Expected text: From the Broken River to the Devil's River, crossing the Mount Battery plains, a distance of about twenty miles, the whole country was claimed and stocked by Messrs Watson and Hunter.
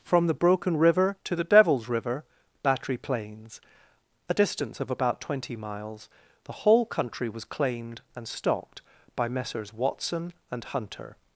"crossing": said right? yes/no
no